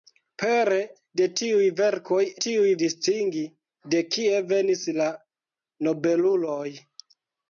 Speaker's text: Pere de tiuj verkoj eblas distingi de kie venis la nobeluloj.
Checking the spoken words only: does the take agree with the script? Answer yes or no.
no